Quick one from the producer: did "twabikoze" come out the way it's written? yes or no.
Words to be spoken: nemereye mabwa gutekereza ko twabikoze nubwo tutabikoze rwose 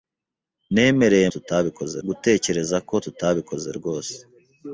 no